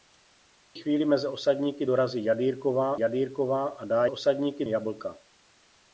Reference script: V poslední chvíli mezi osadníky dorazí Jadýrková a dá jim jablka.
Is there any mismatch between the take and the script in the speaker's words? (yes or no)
yes